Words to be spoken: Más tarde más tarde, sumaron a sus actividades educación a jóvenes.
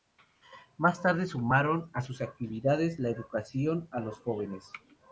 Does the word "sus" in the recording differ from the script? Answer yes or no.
no